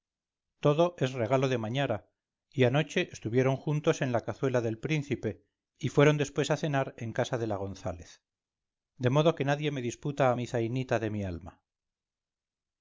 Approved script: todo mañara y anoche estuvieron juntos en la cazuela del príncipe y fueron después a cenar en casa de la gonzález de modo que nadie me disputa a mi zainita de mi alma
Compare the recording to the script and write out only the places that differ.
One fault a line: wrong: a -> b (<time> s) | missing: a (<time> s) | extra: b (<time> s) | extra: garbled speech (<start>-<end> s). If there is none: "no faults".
extra: es regalo de (1.0 s)